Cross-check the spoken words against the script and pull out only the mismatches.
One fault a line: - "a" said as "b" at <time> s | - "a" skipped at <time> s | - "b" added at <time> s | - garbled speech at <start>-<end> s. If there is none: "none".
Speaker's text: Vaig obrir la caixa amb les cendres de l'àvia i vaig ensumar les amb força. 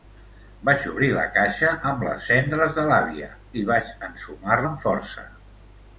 - "les" skipped at 4.6 s